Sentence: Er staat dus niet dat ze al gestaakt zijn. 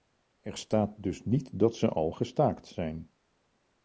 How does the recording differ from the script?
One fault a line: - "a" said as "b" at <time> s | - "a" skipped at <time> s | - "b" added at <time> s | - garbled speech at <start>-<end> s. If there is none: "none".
none